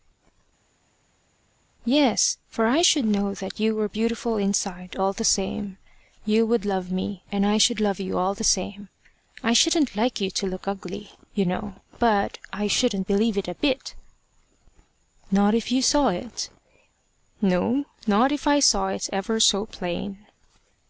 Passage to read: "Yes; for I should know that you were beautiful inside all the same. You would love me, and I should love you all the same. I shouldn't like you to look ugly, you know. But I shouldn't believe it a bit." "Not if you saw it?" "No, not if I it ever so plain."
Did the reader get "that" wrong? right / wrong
right